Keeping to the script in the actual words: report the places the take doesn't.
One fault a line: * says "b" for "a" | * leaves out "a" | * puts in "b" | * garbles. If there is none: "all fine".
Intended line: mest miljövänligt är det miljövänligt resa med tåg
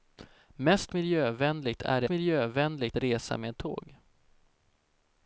all fine